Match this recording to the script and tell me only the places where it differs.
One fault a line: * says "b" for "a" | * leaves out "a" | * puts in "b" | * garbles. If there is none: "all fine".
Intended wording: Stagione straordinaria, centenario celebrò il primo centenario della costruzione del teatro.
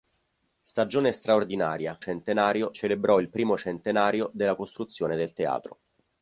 all fine